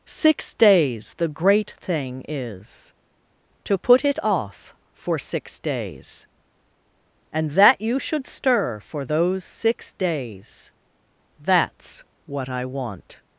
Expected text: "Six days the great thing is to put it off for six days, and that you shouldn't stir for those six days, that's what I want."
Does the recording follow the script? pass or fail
fail